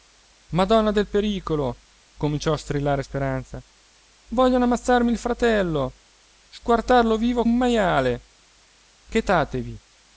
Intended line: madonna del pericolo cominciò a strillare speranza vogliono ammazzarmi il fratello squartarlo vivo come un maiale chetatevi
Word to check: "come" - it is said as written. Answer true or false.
false